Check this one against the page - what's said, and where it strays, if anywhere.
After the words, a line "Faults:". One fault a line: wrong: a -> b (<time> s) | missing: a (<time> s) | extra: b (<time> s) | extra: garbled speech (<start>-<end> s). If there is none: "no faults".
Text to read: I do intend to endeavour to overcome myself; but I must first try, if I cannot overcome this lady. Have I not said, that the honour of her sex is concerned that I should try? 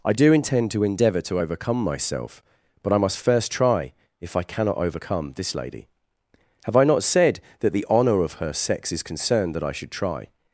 I do intend to endeavour to overcome myself; but I must first try, if I cannot overcome this lady. Have I not said, that the honour of her sex is concerned that I should try?
Faults:
no faults